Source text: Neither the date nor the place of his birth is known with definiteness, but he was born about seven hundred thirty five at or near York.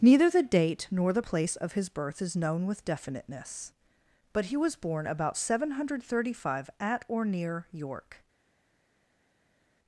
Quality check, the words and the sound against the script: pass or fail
pass